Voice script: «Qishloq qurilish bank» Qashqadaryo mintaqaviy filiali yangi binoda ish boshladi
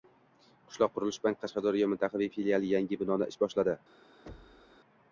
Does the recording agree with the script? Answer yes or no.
yes